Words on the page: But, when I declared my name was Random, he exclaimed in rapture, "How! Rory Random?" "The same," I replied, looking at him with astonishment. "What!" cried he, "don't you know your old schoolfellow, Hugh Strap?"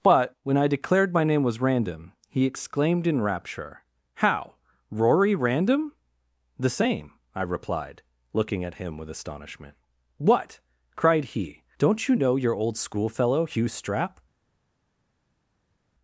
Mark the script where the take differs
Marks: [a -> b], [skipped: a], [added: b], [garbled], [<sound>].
But, when I declared my name was Random, he exclaimed in rapture, "How! Rory Random?" "The same," I replied, looking at him with astonishment. "What!" cried he, "don't you know your old schoolfellow, Hugh Strap?"